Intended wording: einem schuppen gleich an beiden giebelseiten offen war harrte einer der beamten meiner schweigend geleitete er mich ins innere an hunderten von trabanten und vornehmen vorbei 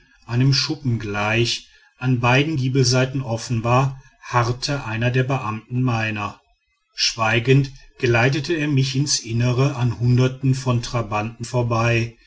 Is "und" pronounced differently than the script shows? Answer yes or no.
yes